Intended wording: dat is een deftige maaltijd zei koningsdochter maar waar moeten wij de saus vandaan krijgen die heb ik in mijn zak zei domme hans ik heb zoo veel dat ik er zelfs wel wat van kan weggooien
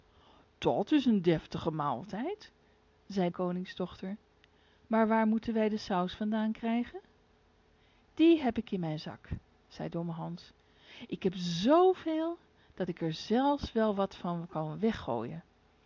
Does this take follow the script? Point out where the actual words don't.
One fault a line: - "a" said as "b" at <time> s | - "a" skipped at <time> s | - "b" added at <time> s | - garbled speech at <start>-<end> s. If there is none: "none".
none